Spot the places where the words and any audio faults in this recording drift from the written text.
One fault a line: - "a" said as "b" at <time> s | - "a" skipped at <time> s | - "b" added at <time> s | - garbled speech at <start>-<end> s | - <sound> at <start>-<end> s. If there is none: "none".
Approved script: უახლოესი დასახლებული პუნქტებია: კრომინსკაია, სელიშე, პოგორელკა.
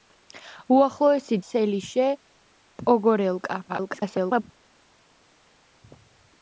- "დასახლებული პუნქტებია კრომინსკაია" skipped at 1.4 s
- garbled speech at 3.7-4.4 s